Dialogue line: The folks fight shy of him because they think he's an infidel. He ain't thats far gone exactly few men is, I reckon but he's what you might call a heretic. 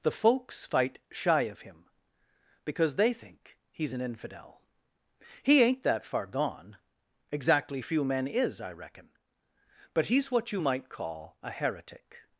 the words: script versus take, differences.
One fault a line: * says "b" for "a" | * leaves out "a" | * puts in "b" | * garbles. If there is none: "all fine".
* says "that" for "thats"